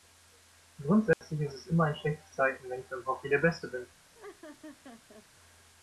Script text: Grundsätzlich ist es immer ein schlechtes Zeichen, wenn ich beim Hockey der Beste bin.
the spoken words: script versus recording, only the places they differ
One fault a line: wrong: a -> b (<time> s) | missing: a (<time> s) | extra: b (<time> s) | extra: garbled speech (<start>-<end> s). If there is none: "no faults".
no faults